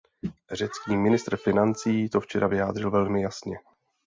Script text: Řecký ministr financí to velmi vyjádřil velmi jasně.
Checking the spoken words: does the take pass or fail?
fail